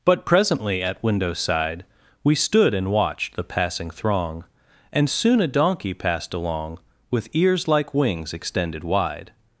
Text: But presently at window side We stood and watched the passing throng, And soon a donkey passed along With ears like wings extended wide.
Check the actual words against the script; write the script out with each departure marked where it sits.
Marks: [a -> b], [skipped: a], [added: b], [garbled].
But presently at window side We stood and watched the passing throng, And soon a donkey passed along With ears like wings extended wide.